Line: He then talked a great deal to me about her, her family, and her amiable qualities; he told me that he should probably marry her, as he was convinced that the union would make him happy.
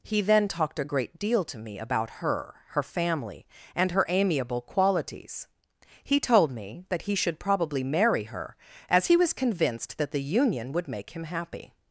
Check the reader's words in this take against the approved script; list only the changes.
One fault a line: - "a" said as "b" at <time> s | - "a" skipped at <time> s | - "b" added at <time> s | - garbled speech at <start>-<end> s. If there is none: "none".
none